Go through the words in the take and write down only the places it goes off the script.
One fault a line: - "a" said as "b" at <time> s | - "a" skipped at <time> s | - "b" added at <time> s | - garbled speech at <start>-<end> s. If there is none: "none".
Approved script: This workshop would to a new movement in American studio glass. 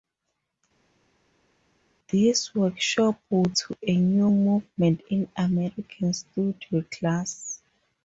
none